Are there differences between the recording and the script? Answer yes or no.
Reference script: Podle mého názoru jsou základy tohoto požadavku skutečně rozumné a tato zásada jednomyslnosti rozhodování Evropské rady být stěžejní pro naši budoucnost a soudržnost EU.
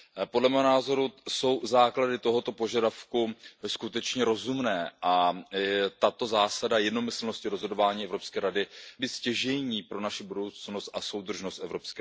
no